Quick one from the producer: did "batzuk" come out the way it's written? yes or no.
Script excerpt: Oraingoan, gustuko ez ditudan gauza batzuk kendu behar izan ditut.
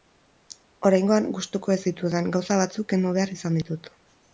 yes